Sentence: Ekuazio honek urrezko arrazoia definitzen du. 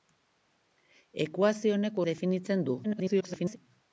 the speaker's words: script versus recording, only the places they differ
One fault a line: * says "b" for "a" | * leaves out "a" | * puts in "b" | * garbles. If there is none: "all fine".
* leaves out "urrezko arrazoia"
* garbles